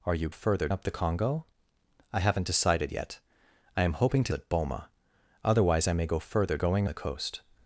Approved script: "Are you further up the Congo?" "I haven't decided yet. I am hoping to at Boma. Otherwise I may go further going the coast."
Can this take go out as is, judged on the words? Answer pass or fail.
pass